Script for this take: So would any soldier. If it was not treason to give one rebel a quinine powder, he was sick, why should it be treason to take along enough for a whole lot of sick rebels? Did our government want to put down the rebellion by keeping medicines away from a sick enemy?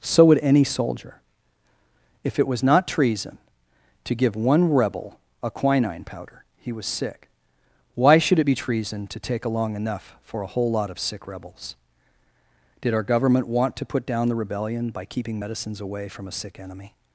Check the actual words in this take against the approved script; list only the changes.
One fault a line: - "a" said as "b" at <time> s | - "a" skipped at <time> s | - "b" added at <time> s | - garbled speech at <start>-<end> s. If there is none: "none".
none